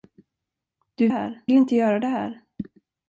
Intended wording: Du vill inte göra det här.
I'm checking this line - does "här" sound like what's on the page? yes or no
yes